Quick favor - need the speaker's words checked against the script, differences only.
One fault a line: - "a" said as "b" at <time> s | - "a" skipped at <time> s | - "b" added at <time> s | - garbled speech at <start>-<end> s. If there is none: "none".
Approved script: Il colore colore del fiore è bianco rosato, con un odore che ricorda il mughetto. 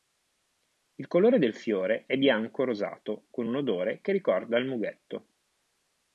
- "colore" skipped at 1.4 s